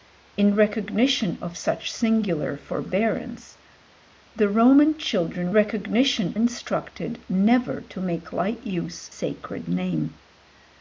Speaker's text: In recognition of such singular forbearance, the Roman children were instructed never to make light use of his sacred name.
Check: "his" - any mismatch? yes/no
yes